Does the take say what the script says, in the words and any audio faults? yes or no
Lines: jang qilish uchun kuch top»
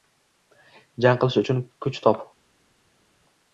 yes